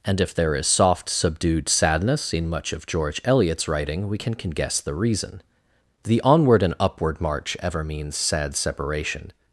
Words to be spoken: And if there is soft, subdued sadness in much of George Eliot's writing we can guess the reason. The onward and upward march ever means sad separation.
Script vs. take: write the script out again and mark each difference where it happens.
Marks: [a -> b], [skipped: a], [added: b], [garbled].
And if there is soft, subdued sadness in much of George Eliot's writing we can [added: can] guess the reason. The onward and upward march ever means sad separation.